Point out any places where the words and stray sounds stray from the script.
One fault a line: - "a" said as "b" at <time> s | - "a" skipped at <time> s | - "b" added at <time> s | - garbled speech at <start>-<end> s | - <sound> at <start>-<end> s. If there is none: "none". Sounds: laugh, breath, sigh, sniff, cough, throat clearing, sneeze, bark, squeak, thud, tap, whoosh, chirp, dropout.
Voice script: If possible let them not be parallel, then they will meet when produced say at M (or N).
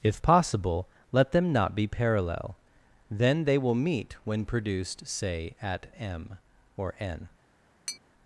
- tap at 7.9-8.0 s